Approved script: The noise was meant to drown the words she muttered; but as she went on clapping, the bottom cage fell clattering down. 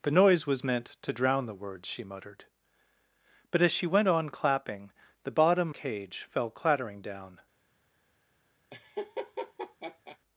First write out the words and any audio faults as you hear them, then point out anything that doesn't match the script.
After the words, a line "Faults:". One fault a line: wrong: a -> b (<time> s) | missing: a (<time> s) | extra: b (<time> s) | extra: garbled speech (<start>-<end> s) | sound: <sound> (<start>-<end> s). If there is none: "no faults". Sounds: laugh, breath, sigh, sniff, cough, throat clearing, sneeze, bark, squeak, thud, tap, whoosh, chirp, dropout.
The noise was meant to drown the words she muttered; but as she went on clapping, the bottom cage fell clattering down.
Faults:
sound: laugh (8.7-10.2 s)